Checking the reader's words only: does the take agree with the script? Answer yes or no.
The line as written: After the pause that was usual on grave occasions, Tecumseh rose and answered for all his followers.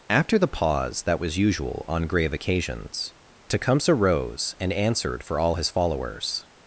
yes